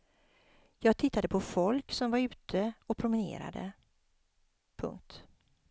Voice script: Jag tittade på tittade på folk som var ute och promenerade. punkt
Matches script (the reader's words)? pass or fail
fail